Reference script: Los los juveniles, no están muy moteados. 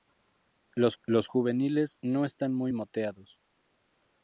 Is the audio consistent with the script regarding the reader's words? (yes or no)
yes